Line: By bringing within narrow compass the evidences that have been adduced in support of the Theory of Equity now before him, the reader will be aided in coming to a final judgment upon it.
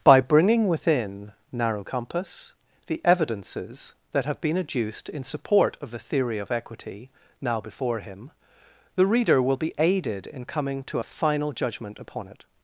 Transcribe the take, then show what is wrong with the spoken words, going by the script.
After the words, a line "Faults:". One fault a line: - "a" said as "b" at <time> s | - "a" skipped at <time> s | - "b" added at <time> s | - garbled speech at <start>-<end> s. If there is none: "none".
By bringing within narrow compass the evidences that have been adduced in support of the Theory of Equity now before him, the reader will be aided in coming to a final judgment upon it.
Faults:
none